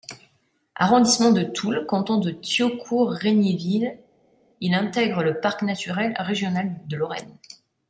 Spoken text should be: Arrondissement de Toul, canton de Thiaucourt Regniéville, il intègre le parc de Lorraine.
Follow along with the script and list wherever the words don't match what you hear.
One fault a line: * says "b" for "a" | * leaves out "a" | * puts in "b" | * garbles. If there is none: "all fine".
* puts in "naturel régional"